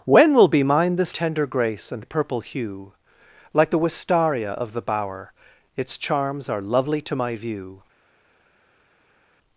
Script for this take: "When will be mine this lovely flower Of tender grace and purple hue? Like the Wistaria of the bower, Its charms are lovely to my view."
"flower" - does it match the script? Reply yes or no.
no